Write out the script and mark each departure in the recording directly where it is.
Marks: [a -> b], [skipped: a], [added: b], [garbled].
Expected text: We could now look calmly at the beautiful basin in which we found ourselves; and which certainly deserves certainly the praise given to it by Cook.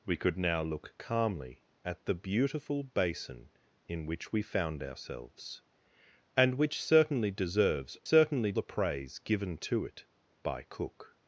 We could now look calmly at the beautiful basin in which we found ourselves; and which certainly deserves certainly the praise given to it by Cook.